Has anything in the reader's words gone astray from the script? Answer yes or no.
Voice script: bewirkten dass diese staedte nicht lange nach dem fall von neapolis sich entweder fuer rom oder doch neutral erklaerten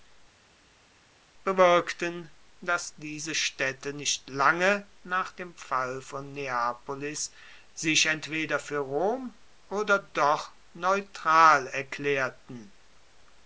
no